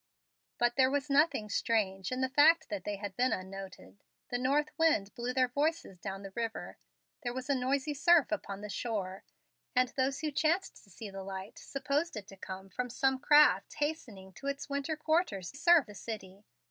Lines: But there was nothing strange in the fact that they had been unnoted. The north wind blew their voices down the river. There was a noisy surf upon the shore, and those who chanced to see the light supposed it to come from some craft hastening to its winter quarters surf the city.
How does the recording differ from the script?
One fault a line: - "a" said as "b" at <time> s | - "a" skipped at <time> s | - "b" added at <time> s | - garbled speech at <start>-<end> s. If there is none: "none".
none